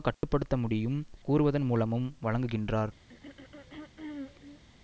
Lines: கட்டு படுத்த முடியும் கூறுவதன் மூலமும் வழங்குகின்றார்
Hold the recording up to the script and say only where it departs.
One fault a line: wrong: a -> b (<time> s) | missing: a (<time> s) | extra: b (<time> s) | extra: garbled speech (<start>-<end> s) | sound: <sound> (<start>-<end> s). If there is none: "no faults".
sound: dropout (0.1-0.2 s)
sound: throat clearing (3.1-4.6 s)